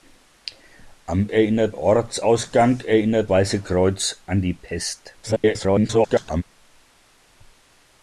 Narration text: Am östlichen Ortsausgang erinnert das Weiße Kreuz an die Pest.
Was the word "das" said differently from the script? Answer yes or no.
yes